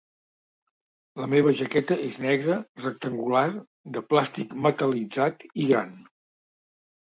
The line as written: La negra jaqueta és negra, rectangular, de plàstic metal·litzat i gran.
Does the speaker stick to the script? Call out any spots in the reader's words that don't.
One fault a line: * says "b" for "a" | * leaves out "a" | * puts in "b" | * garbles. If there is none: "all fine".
* says "meva" for "negra"